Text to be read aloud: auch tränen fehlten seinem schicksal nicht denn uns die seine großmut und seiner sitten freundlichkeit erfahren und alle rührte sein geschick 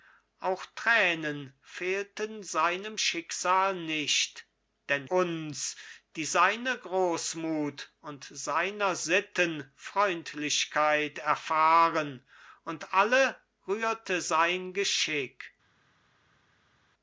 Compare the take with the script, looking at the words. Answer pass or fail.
pass